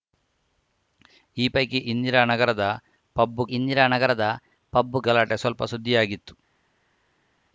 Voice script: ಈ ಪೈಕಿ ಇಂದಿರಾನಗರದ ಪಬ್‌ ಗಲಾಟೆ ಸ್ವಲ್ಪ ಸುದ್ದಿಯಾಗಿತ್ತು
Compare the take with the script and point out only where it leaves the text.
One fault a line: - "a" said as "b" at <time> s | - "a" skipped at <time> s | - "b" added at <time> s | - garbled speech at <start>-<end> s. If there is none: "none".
- "ಇಂದಿರಾನಗರದ ಪಬ್" added at 3.6 s